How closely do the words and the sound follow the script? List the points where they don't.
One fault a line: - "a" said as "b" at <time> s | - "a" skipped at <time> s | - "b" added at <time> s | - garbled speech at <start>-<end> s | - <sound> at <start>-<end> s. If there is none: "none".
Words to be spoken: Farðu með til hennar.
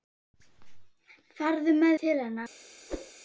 - whoosh at 2.9-3.1 s